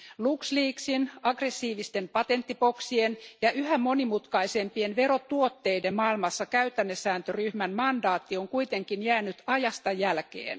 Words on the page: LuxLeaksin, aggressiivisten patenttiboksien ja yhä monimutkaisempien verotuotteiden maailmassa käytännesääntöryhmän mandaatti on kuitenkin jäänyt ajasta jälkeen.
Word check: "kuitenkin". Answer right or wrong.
right